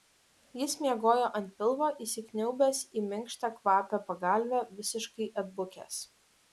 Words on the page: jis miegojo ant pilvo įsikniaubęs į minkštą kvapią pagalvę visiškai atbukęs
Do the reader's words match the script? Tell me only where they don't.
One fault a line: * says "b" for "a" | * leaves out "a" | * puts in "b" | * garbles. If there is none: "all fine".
all fine